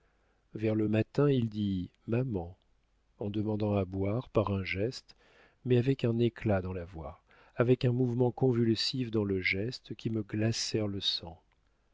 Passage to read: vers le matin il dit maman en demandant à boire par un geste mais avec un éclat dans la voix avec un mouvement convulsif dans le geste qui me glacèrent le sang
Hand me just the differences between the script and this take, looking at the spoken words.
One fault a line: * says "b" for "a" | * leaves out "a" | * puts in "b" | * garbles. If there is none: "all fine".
all fine